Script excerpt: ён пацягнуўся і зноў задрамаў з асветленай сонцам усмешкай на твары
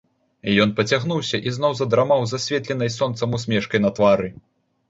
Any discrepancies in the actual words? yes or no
no